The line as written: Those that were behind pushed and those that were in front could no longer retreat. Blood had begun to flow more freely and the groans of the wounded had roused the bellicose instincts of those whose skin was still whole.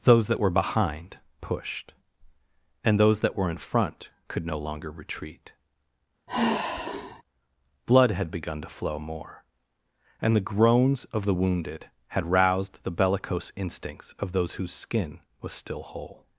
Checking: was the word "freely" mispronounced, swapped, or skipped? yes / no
yes